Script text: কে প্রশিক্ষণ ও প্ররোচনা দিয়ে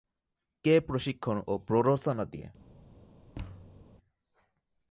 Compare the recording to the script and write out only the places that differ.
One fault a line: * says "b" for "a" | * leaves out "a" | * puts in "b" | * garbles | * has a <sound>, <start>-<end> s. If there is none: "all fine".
* has a thud, 3.3-3.9 s